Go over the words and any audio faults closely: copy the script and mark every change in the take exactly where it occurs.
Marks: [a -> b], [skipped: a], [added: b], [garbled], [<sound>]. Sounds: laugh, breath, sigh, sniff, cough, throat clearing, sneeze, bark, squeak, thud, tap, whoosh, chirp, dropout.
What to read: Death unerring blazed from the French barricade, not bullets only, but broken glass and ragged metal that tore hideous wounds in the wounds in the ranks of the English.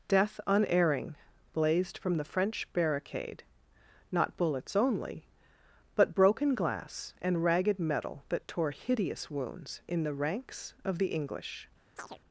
Death unerring blazed from the French barricade, not bullets only, but broken glass and ragged metal that tore hideous wounds in the [skipped: wounds in the] ranks of the English. [chirp]